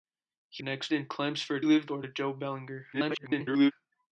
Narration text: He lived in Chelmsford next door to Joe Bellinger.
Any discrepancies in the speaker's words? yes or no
yes